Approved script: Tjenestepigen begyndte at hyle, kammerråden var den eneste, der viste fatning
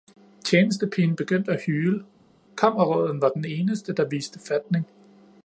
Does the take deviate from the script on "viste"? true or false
false